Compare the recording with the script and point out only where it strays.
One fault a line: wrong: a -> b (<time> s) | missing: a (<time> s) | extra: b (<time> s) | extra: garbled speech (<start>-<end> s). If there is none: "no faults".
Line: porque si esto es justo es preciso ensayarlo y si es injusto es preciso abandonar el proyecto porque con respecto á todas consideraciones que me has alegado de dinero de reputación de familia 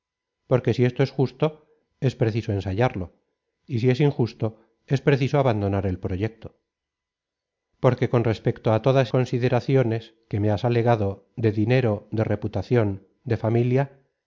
no faults